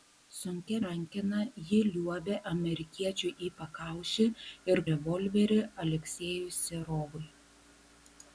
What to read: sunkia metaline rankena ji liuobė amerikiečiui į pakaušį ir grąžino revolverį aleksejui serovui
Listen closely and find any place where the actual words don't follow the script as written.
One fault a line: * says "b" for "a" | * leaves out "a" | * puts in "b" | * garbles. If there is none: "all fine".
* leaves out "metaline"
* leaves out "grąžino"